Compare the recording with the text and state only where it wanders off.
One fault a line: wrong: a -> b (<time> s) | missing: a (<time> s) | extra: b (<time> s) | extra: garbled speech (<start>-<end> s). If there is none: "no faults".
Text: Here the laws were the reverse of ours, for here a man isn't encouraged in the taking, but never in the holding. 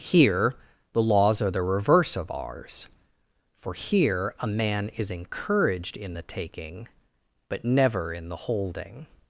wrong: were -> are (1.4 s)
wrong: isn't -> is (4.9 s)